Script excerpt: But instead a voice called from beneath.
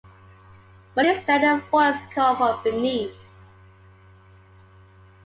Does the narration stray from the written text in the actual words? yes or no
no